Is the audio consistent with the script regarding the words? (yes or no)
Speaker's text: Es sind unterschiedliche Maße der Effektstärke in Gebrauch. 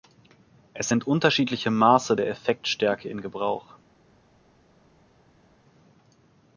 yes